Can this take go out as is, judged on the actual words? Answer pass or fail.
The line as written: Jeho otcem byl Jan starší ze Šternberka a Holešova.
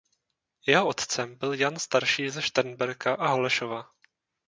pass